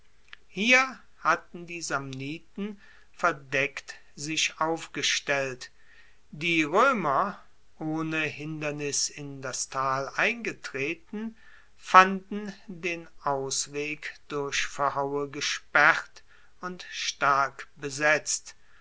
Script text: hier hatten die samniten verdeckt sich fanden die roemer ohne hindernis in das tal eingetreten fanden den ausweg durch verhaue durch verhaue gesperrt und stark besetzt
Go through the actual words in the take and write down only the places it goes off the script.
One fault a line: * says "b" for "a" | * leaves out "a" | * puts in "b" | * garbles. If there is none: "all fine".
* says "aufgestellt" for "fanden"
* leaves out "durch verhaue"